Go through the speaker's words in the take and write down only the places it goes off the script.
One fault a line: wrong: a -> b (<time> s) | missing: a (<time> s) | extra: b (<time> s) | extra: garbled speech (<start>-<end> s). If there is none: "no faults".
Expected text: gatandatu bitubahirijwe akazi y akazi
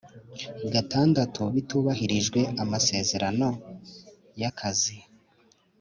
wrong: akazi -> amasezerano (2.6 s)